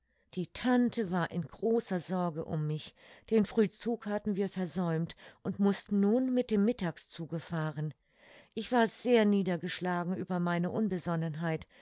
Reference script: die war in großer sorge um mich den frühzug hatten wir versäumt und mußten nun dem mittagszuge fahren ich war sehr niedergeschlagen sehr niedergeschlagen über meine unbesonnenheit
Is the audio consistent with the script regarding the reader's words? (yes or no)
no